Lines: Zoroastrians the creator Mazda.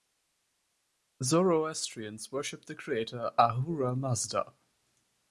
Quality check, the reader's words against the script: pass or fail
fail